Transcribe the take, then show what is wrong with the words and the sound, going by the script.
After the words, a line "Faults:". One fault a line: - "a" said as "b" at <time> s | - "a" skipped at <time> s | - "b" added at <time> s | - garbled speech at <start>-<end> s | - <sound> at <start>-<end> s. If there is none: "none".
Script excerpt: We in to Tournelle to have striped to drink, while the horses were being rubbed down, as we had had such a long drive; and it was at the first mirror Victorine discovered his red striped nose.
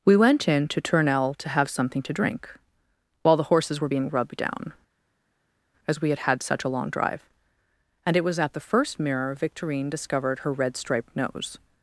We went in to Tournelle to have something to drink, while the horses were being rubbed down, as we had had such a long drive; and it was at the first mirror Victorine discovered her red striped nose.
Faults:
- "went" added at 0.2 s
- "striped" said as "something" at 1.7 s
- "his" said as "her" at 10.4 s